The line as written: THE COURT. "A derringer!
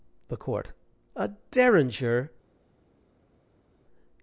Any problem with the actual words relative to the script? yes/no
no